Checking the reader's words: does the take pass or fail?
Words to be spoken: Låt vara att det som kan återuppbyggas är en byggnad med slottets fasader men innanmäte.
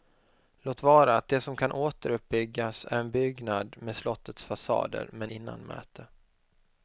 pass